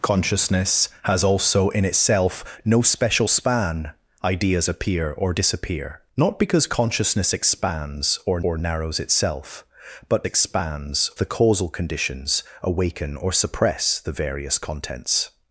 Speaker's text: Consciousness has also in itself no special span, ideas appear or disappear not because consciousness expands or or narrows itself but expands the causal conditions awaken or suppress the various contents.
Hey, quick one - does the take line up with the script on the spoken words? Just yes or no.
yes